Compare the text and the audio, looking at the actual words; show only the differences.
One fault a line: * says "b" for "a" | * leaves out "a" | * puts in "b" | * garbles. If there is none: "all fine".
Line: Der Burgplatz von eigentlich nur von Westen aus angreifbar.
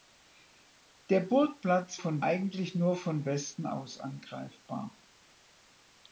all fine